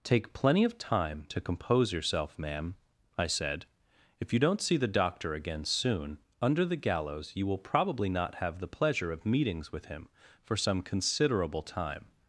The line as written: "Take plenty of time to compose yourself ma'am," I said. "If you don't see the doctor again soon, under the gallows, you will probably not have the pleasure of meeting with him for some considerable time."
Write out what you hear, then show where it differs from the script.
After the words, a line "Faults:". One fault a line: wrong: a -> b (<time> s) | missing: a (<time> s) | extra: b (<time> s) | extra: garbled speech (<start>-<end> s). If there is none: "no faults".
"Take plenty of time to compose yourself ma'am," I said. "If you don't see the doctor again soon, under the gallows, you will probably not have the pleasure of meetings with him for some considerable time."
Faults:
wrong: meeting -> meetings (9.3 s)